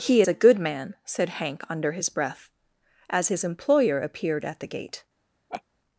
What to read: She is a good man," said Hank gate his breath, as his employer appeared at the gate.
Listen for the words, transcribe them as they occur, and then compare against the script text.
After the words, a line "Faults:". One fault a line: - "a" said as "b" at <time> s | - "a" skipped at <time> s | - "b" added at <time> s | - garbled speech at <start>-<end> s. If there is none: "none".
He is a good man," said Hank under his breath, as his employer appeared at the gate.
Faults:
- "She" said as "He" at 0.0 s
- "gate" said as "under" at 1.7 s